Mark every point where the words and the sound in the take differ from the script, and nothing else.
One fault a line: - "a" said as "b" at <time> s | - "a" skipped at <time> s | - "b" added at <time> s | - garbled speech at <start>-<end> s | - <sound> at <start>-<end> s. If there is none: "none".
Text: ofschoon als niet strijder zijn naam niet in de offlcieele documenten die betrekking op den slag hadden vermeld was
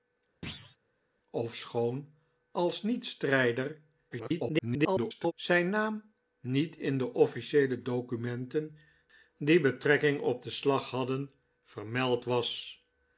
- thud at 0.4-0.8 s
- garbled speech at 4.1-5.3 s